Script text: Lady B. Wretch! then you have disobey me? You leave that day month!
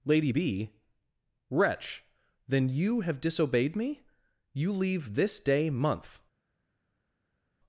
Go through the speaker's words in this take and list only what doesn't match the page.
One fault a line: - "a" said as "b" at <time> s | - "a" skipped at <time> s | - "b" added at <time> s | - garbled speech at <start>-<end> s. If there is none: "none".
- "disobey" said as "disobeyed" at 3.2 s
- "that" said as "this" at 5.2 s